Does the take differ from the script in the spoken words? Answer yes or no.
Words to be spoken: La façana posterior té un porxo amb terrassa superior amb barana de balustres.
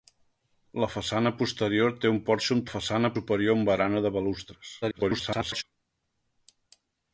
yes